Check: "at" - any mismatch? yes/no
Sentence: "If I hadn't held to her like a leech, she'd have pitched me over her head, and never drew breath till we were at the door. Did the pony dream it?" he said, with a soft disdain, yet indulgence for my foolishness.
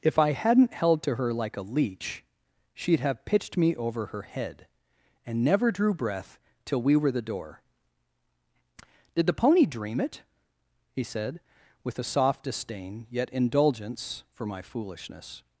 yes